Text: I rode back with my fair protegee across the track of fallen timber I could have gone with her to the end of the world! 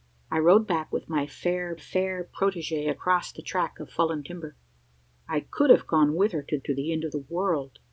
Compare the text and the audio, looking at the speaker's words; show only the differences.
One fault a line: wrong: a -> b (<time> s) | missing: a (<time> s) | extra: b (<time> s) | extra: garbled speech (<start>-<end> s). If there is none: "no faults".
extra: fair (1.8 s)
extra: to (6.6 s)